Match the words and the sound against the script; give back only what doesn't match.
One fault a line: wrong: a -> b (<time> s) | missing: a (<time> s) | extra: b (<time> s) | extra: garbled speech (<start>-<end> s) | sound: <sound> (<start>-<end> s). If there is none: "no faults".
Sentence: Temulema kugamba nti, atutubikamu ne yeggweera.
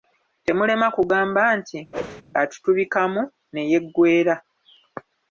sound: whoosh (1.9-2.2 s)